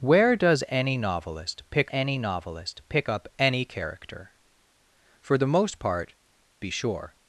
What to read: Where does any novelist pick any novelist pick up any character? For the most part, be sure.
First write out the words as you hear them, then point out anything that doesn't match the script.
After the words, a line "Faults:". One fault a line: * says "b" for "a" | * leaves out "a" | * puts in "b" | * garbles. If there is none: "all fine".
Where does any novelist pick any novelist pick up any character? For the most part, be sure.
Faults:
all fine